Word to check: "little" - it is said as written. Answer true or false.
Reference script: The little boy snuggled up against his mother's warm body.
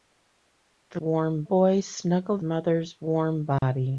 false